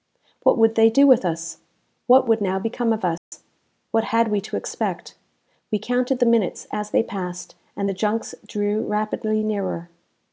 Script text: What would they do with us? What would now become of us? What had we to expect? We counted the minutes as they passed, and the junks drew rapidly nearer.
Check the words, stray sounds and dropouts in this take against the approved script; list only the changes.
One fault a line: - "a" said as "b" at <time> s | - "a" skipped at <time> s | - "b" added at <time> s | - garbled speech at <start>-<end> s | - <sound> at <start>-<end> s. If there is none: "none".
- dropout at 3.2-3.3 s